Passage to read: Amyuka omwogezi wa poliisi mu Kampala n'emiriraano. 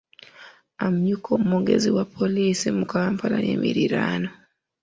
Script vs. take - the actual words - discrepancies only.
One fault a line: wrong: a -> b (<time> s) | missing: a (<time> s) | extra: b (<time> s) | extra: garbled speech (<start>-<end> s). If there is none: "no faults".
no faults